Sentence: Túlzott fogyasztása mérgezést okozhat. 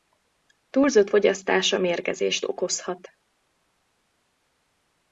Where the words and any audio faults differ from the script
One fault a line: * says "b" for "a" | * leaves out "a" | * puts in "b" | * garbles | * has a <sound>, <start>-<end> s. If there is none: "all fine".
all fine